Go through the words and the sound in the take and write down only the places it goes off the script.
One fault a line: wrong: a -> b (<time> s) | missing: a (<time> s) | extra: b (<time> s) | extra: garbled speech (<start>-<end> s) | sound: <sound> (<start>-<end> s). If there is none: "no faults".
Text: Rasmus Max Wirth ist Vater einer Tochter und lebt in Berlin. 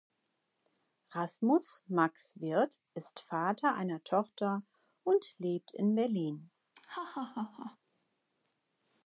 sound: laugh (6.7-7.8 s)